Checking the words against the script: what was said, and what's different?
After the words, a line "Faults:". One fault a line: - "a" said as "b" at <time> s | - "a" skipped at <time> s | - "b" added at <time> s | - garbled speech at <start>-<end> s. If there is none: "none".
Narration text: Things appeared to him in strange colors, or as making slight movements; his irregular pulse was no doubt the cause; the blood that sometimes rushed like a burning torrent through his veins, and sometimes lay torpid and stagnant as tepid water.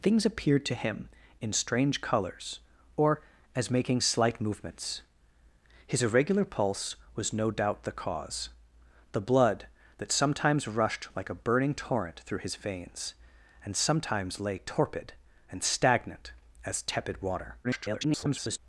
Things appeared to him in strange colors, or as making slight movements; his irregular pulse was no doubt the cause; the blood that sometimes rushed like a burning torrent through his veins, and sometimes lay torpid and stagnant as tepid water. [garbled]
Faults:
- garbled speech at 17.6-18.6 s